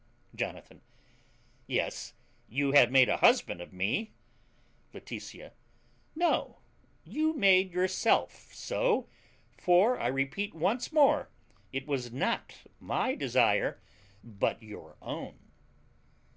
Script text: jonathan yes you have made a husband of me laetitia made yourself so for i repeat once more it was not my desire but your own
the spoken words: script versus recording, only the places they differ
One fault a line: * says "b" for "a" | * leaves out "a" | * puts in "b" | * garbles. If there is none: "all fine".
* puts in "no you"